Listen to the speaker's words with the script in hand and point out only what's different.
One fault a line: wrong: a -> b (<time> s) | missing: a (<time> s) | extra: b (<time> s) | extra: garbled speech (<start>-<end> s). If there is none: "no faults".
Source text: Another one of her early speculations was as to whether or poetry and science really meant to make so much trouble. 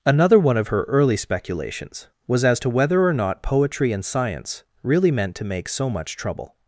extra: not (3.1 s)